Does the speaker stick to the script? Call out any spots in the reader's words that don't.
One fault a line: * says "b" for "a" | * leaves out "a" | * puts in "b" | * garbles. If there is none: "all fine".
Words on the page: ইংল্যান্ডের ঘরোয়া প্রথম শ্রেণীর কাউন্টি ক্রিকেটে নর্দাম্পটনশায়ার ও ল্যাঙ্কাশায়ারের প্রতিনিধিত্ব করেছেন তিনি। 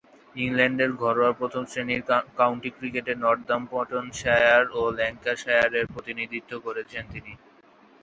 all fine